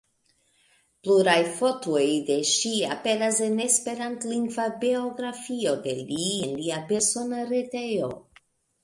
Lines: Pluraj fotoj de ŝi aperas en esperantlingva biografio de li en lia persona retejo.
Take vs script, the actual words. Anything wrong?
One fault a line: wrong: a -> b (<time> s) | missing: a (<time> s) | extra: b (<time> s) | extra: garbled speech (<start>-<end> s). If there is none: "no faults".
no faults